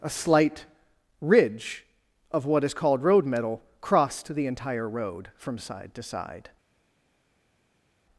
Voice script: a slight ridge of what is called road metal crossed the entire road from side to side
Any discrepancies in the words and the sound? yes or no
no